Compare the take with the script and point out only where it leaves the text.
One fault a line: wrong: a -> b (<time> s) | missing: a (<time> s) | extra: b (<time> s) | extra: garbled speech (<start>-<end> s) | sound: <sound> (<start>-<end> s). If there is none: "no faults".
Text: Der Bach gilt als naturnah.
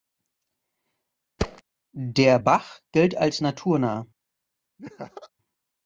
sound: thud (1.4-1.6 s)
sound: laugh (4.8-5.3 s)